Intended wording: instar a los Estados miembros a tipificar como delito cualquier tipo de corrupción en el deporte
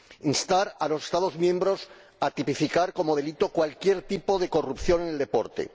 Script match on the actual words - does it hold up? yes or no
yes